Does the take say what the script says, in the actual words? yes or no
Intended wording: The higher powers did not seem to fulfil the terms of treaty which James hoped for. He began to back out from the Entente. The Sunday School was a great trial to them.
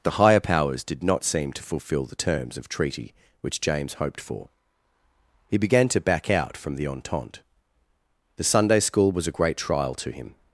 no